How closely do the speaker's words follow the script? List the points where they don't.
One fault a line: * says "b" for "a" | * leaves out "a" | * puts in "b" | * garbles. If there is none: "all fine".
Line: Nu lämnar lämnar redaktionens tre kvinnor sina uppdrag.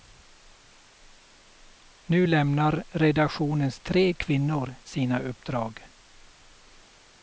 * leaves out "lämnar"